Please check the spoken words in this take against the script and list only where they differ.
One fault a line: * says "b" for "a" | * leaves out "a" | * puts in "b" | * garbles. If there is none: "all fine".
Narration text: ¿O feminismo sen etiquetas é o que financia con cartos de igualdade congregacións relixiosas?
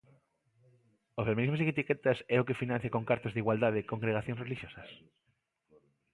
all fine